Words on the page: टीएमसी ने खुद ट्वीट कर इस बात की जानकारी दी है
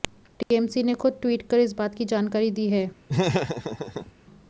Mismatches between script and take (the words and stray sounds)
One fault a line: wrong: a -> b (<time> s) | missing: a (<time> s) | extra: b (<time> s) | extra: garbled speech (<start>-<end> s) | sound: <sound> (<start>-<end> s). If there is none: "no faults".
sound: dropout (0.4-0.5 s)
sound: laugh (3.1-4.1 s)